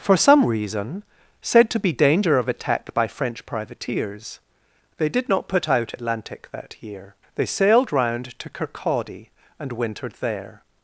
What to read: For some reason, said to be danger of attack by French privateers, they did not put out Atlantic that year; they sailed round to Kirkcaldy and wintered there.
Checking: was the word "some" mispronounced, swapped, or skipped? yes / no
no